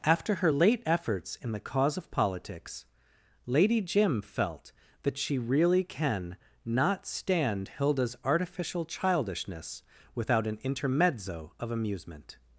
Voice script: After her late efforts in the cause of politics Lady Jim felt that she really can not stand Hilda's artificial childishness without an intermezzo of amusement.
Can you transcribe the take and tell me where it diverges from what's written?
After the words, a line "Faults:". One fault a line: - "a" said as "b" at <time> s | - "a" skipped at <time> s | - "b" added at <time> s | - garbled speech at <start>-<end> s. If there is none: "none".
After her late efforts in the cause of politics Lady Jim felt that she really can not stand Hilda's artificial childishness without an intermezzo of amusement.
Faults:
none